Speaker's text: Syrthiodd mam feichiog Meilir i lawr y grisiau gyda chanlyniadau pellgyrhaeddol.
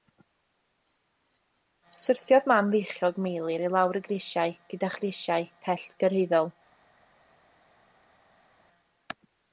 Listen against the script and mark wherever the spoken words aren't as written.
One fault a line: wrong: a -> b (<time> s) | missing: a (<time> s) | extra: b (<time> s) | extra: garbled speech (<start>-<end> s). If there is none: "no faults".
wrong: chanlyniadau -> grisiau (5.0 s)